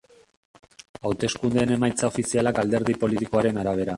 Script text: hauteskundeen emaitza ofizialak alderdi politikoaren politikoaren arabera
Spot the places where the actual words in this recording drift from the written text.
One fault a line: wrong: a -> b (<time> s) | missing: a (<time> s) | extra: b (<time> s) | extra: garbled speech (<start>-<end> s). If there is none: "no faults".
missing: politikoaren (3.6 s)